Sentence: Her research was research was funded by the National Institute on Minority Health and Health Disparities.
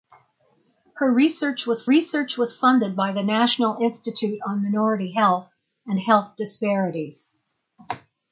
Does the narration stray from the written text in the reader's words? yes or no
no